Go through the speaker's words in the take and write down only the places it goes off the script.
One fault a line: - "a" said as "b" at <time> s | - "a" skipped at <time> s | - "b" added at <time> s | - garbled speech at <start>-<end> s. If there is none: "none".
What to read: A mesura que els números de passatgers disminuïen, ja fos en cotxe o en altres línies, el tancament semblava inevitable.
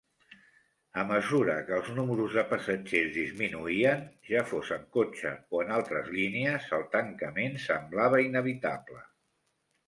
none